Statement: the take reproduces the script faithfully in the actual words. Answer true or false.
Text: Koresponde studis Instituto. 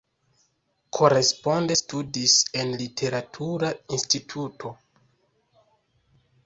false